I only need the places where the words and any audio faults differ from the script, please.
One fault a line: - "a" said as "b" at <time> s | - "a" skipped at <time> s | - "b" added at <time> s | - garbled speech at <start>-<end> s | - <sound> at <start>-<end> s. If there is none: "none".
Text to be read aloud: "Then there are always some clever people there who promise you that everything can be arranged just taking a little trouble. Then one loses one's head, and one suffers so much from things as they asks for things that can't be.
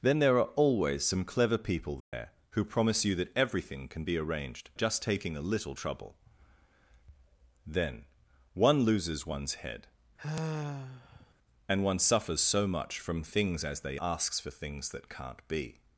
- dropout at 2.0-2.1 s
- sigh at 10.2-11.3 s